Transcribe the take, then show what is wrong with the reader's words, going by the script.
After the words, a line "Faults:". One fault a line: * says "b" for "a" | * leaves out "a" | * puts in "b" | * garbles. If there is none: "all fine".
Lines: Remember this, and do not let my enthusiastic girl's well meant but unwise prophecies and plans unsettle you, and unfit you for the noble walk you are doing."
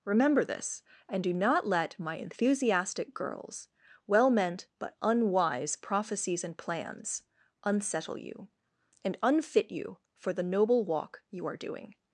Remember this, and do not let my enthusiastic girl's well meant but unwise prophecies and plans unsettle you, and unfit you for the noble walk you are doing."
Faults:
all fine